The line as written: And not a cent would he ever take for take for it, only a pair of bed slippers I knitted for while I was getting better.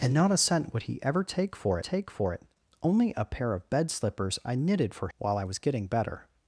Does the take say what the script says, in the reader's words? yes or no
yes